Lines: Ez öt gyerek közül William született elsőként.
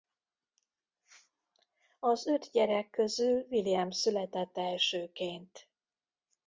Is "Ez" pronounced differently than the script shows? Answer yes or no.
yes